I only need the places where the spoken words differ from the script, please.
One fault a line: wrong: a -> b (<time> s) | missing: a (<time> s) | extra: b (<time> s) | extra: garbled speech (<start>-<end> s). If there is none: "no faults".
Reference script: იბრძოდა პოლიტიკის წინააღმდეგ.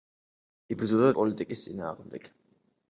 no faults